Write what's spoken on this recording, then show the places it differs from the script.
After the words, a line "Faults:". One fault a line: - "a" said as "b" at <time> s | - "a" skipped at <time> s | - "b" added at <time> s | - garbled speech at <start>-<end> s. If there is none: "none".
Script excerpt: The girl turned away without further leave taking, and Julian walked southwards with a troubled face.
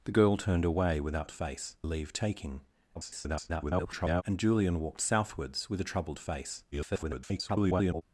The girl turned away without face leave taking, [garbled] and Julian walked southwards with a troubled face. [garbled]
Faults:
- "further" said as "face" at 1.3 s
- garbled speech at 2.9-4.2 s
- garbled speech at 6.7-8.0 s